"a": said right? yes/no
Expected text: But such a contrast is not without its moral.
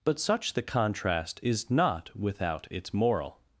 no